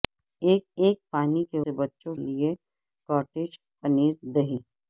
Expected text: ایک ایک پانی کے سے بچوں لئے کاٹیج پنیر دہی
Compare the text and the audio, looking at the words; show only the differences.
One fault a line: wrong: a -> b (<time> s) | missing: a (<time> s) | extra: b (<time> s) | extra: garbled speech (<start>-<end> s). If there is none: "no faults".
no faults